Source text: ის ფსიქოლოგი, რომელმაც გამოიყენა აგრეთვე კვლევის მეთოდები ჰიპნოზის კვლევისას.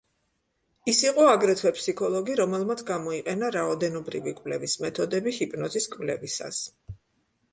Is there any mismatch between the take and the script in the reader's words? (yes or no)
yes